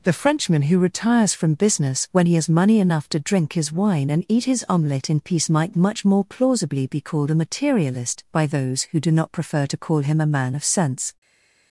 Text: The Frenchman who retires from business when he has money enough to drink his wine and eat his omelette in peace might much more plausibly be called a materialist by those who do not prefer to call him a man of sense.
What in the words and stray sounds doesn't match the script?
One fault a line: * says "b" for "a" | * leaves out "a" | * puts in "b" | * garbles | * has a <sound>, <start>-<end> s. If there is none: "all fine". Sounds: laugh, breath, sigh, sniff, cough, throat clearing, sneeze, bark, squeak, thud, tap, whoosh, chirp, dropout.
all fine